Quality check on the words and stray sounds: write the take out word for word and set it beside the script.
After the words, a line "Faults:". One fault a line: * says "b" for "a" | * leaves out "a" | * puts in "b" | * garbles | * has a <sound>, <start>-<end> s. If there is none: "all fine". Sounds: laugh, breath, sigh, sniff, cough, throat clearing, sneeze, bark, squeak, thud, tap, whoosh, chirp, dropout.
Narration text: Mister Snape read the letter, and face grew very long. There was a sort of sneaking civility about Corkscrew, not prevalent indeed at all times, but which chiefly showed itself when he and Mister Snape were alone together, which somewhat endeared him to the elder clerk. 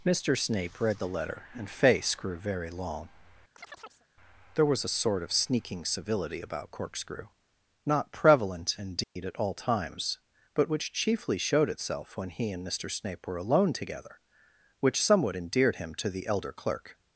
Mister Snape read the letter, and face grew very long. There was a sort of sneaking civility about Corkscrew, not prevalent indeed at all times, but which chiefly showed itself when he and Mister Snape were alone together, which somewhat endeared him to the elder clerk.
Faults:
* has a chirp, 3.6-4.1 s
* has a dropout, 9.0-9.2 s